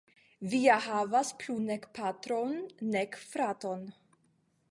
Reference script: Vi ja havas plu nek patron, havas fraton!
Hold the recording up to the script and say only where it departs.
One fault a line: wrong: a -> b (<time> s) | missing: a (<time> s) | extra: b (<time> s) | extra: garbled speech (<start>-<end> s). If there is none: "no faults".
wrong: havas -> nek (2.9 s)